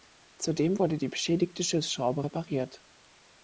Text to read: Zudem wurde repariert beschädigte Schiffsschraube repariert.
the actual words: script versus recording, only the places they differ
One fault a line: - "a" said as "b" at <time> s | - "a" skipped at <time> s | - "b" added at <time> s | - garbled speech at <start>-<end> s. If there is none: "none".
- "repariert" said as "die" at 1.0 s